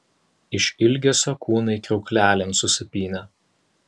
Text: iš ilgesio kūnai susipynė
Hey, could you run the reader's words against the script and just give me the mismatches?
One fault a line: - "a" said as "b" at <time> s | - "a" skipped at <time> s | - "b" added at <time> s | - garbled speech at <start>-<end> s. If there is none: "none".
- "kriauklelėn" added at 1.9 s